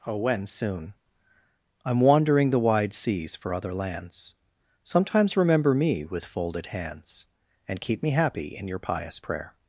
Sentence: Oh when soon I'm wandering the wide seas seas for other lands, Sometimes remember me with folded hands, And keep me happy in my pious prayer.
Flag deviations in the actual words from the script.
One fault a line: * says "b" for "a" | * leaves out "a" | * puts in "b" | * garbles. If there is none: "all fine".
* leaves out "seas"
* says "your" for "my"